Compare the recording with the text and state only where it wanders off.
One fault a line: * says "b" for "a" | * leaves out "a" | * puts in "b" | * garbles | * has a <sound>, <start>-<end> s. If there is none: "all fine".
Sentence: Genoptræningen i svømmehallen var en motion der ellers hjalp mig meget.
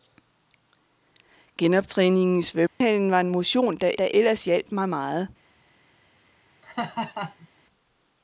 * has a dropout, 2.7-2.8 s
* puts in "der"
* has a laugh, 6.6-7.5 s